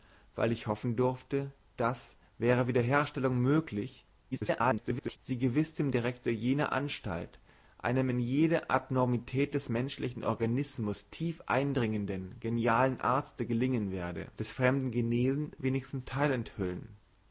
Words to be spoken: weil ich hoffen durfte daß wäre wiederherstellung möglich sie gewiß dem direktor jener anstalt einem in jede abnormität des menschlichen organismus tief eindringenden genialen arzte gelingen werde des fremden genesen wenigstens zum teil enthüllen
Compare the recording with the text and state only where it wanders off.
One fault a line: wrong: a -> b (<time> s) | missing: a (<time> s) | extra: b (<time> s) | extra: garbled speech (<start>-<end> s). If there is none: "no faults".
extra: garbled speech (4.3-5.2 s)
missing: zum (16.1 s)